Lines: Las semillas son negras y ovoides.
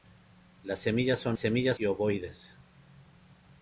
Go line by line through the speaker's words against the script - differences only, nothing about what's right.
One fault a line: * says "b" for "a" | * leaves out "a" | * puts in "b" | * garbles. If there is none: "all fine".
* says "semillas" for "negras"